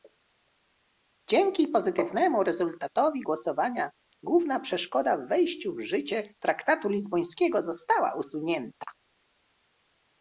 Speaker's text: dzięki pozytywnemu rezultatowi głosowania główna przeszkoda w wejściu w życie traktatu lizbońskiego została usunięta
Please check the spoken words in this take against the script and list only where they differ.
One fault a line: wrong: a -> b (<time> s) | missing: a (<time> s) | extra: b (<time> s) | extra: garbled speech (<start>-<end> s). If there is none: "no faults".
no faults